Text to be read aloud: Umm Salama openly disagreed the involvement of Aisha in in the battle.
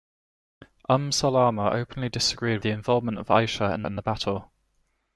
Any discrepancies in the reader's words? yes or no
no